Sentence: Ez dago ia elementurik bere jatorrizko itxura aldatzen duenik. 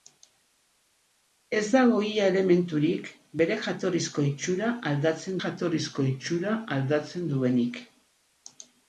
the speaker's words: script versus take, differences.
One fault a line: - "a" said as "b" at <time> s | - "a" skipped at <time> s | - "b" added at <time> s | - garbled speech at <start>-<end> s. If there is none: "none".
- "jatorrizko itxura aldatzen" added at 5.4 s